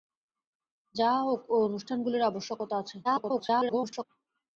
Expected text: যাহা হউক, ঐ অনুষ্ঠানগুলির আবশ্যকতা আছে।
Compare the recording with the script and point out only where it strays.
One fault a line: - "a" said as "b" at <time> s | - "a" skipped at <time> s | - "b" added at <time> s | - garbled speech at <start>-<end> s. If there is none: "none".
- garbled speech at 3.0-4.1 s